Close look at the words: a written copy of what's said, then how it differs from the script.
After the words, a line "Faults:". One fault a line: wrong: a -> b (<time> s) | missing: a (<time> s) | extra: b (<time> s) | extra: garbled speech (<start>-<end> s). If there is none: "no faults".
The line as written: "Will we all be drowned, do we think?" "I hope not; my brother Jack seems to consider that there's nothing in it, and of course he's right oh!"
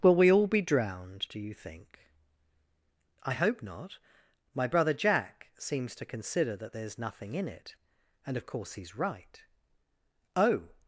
"Will we all be drowned, do you think?" "I hope not; my brother Jack seems to consider that there's nothing in it, and of course he's right oh!"
Faults:
wrong: we -> you (1.4 s)